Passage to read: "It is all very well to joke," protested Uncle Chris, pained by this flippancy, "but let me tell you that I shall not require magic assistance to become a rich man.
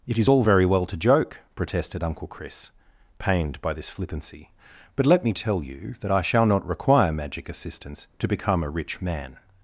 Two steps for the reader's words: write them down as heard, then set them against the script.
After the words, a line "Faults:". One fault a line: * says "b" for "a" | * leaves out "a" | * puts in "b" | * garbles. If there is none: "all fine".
"It is all very well to joke," protested Uncle Chris, pained by this flippancy, "but let me tell you that I shall not require magic assistance to become a rich man.
Faults:
all fine